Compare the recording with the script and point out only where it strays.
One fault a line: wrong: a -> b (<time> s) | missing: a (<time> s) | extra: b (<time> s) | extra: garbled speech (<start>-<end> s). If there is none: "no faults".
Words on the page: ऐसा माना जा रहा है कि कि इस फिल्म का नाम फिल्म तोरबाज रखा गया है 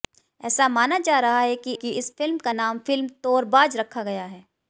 no faults